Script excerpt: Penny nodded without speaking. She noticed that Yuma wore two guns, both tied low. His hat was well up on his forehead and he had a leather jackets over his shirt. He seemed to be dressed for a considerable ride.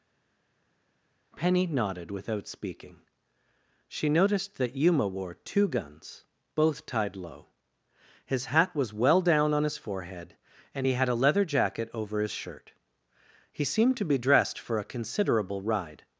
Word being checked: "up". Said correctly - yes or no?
no